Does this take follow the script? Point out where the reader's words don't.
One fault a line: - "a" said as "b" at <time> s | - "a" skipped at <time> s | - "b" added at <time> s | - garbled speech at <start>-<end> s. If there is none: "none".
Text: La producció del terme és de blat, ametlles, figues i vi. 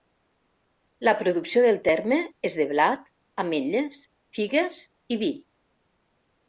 none